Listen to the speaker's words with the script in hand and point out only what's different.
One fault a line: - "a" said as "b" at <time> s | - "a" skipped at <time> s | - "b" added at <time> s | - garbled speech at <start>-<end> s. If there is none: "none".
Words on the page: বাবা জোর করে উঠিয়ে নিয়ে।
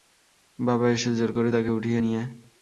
- "এসে" added at 0.9 s
- "তাকে" added at 1.5 s